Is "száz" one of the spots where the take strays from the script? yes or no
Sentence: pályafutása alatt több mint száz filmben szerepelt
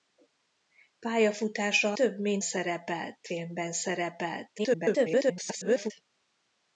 yes